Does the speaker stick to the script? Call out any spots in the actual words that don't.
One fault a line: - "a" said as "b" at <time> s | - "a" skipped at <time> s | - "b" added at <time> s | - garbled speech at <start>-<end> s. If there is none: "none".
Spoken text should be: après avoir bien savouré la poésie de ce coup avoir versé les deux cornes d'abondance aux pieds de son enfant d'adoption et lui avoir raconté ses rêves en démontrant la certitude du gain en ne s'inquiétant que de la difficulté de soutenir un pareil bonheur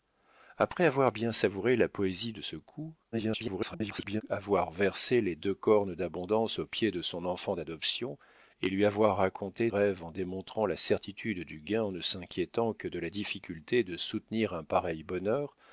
- garbled speech at 3.1-4.2 s
- "ses" skipped at 9.7 s